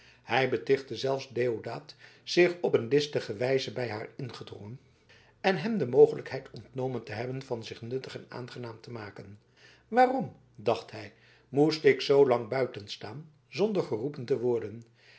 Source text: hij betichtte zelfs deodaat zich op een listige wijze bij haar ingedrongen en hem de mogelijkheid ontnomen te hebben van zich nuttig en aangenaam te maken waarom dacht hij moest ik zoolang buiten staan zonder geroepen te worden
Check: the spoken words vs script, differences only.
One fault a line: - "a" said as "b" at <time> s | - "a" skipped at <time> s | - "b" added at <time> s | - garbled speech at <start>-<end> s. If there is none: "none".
none